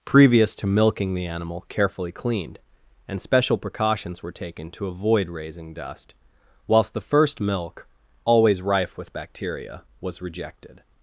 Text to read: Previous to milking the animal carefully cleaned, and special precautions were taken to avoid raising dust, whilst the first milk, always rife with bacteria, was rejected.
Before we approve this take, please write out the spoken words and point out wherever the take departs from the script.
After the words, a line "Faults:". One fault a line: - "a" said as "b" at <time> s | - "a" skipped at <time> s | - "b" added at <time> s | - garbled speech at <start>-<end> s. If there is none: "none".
Previous to milking the animal carefully cleaned, and special precautions were taken to avoid raising dust, whilst the first milk, always rife with bacteria, was rejected.
Faults:
none